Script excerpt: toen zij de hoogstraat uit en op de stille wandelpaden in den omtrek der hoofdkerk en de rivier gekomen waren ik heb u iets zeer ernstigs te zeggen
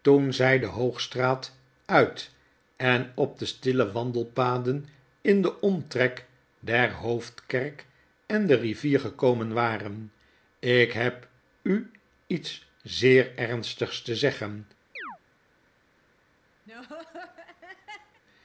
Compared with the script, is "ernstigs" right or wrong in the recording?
right